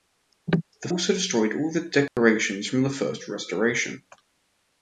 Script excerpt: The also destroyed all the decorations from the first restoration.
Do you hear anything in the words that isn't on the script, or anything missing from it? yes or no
no